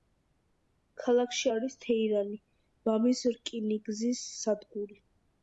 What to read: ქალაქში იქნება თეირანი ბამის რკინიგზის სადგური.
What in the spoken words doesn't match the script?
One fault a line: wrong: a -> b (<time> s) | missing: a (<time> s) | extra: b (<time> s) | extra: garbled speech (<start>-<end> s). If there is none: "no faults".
wrong: იქნება -> არის (1.5 s)